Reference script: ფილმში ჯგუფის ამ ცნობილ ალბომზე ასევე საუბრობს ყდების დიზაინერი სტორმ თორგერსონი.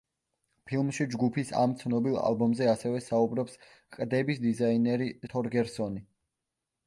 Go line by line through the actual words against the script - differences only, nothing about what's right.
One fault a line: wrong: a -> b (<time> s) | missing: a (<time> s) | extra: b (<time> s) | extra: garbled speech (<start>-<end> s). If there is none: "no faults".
missing: სტორმ (5.1 s)